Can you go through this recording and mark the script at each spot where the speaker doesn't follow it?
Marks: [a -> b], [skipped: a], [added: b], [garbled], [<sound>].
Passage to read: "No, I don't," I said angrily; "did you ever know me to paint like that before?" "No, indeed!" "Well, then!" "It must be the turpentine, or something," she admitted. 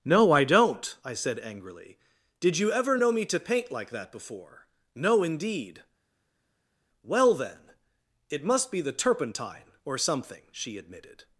"No, I don't," I said angrily; "did you ever know me to paint like that before?" "No, indeed!" "Well, then!" "It must be the turpentine, or something," she admitted.